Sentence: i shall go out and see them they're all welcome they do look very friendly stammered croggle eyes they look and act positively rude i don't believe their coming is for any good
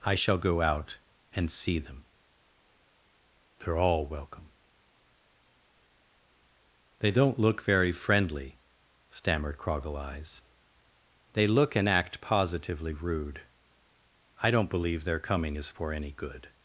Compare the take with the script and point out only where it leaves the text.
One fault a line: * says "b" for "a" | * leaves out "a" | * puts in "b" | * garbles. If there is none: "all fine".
* says "don't" for "do"